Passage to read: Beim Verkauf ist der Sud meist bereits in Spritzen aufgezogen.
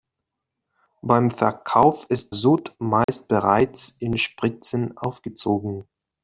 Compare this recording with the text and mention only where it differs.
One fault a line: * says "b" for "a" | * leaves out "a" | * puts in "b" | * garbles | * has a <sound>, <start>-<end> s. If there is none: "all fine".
* leaves out "der"
* has a dropout, 3.0-3.1 s